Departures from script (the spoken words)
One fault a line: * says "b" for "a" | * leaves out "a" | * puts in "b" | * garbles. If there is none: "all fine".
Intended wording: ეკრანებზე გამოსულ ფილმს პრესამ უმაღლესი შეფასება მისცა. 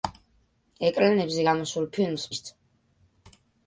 * leaves out "პრესამ უმაღლესი შეფასება"